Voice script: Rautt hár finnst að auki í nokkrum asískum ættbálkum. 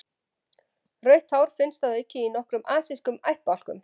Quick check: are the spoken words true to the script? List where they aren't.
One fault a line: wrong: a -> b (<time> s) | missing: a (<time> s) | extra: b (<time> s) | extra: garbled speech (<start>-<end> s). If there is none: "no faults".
no faults